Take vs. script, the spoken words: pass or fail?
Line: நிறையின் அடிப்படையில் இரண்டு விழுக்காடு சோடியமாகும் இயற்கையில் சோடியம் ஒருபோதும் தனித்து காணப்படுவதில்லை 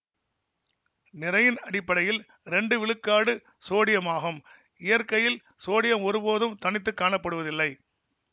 pass